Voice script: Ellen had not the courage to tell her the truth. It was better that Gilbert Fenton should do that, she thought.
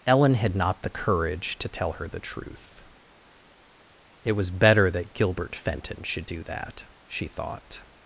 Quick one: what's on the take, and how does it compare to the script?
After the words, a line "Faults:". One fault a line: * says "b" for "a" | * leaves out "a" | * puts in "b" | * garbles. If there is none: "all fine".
Ellen had not the courage to tell her the truth. It was better that Gilbert Fenton should do that, she thought.
Faults:
all fine